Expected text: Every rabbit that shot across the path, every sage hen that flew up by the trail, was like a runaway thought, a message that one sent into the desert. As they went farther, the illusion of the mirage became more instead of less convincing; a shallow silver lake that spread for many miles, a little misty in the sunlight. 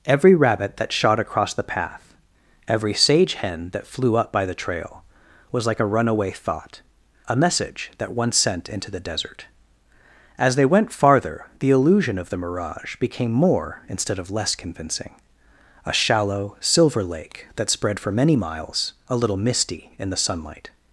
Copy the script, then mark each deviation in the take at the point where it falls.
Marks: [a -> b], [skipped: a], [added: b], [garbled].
Every rabbit that shot across the path, every sage hen that flew up by the trail, was like a runaway thought, a message that one sent into the desert. As they went farther, the illusion of the mirage became more instead of less convincing; a shallow silver lake that spread for many miles, a little misty in the sunlight.